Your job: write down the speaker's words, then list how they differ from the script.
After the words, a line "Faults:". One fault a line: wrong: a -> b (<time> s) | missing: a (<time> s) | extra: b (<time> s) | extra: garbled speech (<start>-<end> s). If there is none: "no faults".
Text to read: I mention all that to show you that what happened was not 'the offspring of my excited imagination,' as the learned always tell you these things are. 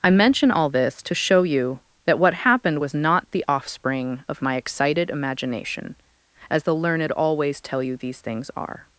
I mention all this to show you that what happened was not 'the offspring of my excited imagination,' as the learned always tell you these things are.
Faults:
wrong: that -> this (0.7 s)